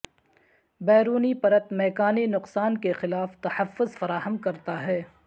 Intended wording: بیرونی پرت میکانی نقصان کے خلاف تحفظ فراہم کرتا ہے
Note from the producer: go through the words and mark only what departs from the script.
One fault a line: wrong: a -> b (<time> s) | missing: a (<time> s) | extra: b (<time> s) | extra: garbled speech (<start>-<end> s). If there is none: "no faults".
no faults